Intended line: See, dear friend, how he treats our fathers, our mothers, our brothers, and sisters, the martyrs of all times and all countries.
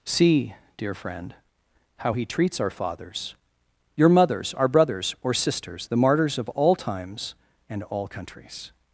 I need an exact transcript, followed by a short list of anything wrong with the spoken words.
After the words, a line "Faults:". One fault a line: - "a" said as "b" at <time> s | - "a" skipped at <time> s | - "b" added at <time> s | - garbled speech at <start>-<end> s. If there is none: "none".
See, dear friend, how he treats our fathers, your mothers, our brothers, or sisters, the martyrs of all times and all countries.
Faults:
- "our" said as "your" at 3.9 s
- "and" said as "or" at 5.2 s